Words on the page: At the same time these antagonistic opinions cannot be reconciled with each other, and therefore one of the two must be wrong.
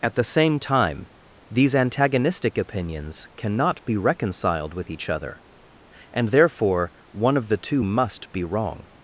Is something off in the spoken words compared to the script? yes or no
no